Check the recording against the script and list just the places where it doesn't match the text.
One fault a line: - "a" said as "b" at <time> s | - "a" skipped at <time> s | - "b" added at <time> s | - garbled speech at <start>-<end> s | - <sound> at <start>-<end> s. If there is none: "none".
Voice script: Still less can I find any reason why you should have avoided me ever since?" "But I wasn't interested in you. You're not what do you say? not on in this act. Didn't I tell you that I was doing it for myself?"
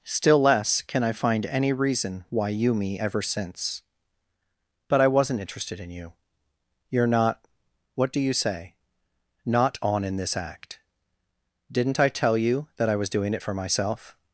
- "should have avoided" skipped at 2.7 s